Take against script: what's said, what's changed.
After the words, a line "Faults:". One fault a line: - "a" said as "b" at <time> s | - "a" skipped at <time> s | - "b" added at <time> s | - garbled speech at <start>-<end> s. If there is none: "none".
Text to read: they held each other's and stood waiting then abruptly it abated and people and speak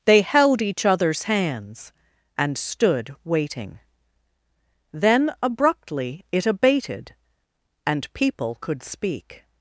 they held each other's hands and stood waiting then abruptly it abated and people could speak
Faults:
- "hands" added at 1.2 s
- "and" said as "could" at 8.6 s